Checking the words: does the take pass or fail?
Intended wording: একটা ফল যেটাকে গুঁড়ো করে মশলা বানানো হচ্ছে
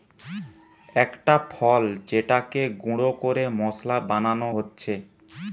pass